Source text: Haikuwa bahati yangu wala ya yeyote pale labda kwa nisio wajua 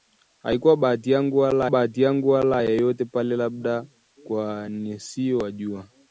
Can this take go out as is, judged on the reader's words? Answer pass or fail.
fail